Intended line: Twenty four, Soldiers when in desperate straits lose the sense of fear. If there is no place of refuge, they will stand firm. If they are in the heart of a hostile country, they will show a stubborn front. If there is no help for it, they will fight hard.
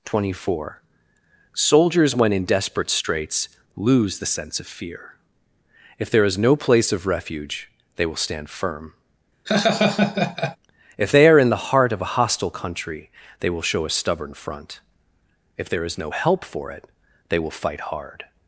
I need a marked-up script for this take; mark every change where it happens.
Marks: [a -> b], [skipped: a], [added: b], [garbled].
Twenty four, Soldiers when in desperate straits lose the sense of fear. If there is no place of refuge, they will stand firm. If they are in the heart of a hostile country, they will show a stubborn front. If there is no help for it, they will fight hard.